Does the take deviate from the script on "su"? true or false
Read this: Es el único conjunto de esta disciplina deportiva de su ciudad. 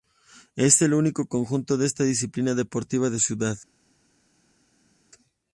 true